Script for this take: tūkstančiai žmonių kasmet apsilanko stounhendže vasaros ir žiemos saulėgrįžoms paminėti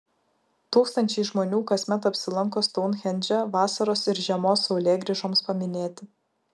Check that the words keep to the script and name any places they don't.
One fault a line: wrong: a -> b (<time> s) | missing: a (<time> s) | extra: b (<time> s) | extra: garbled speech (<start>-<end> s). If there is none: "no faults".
no faults